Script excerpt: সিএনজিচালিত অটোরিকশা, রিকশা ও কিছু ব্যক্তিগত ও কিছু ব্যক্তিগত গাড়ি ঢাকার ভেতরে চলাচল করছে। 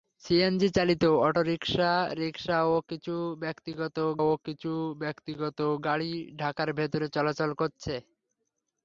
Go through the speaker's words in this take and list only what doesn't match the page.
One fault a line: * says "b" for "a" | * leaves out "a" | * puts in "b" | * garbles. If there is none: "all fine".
all fine